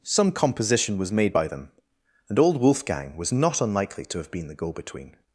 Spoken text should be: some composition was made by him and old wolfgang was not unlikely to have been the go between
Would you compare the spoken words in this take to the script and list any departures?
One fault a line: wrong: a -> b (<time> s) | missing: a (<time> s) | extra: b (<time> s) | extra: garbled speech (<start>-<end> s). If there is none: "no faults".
wrong: him -> them (1.5 s)